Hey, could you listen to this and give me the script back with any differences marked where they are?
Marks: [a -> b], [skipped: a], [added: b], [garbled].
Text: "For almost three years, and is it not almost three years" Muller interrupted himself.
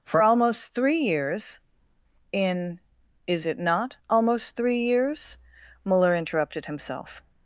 "For almost three years, [and -> in] is it not almost three years" Muller interrupted himself.